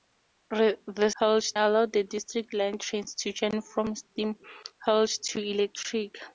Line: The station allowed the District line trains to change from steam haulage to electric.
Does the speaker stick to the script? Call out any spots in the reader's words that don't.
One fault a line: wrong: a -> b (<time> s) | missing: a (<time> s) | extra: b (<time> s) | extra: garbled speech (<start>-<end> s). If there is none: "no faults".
wrong: station -> haulage (1.2 s)